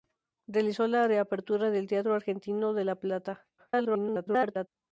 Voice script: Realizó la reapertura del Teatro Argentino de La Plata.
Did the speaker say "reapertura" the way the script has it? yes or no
yes